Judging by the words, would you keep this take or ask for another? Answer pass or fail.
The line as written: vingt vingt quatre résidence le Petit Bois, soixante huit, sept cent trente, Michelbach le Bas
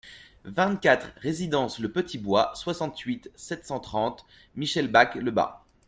fail